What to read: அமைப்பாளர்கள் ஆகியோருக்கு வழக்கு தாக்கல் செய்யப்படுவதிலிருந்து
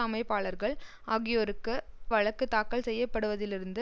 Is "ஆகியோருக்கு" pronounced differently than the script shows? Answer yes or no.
no